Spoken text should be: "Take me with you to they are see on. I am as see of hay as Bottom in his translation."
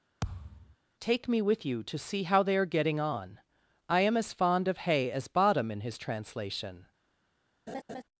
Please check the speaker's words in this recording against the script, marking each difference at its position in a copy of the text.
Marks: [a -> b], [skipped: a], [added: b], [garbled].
"Take me with you to [added: see how] they are [see -> getting] on. I am as [see -> fond] of hay as Bottom in his translation."